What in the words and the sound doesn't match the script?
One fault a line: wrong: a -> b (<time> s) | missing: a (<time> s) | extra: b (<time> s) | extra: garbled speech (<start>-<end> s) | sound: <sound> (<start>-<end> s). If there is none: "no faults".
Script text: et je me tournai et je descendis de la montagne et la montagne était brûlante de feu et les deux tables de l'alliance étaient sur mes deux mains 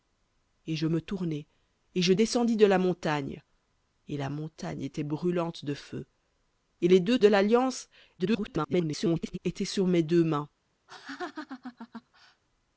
missing: tables (7.2 s)
extra: garbled speech (8.2-9.4 s)
sound: laugh (10.9-12.4 s)